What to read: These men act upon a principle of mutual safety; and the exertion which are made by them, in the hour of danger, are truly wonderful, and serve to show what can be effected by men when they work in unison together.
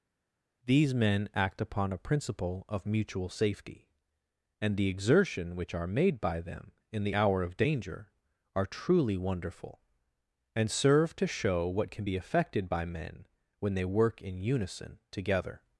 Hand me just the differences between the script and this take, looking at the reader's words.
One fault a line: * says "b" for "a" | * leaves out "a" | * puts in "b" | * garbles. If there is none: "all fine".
all fine